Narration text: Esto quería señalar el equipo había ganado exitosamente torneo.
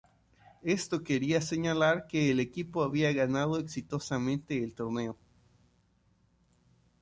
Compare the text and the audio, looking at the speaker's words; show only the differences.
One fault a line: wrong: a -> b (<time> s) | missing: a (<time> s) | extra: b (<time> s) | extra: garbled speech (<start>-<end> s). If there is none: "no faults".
extra: que (2.1 s)
extra: el (4.6 s)